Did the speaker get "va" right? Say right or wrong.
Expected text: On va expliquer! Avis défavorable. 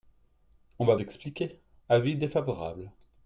right